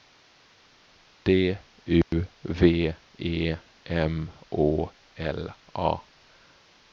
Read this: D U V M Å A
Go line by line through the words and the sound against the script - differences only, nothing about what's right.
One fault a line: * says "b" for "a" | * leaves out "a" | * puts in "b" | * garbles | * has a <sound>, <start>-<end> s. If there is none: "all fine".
* has a dropout, 2.0-2.1 s
* puts in "E"
* puts in "L"